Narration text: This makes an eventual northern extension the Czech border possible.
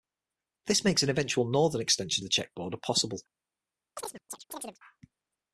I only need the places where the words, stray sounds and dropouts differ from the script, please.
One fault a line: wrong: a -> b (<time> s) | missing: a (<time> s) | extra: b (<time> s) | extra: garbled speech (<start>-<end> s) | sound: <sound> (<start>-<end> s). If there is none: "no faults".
sound: chirp (4.0-4.8 s)